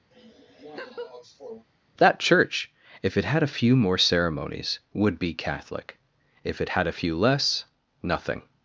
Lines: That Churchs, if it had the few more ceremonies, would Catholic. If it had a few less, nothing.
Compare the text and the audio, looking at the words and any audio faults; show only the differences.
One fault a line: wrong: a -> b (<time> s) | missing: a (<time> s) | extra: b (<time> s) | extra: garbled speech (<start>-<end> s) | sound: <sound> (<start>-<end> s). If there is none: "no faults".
sound: laugh (0.1-1.7 s)
wrong: Churchs -> Church (2.2 s)
wrong: the -> a (3.4 s)
extra: be (5.2 s)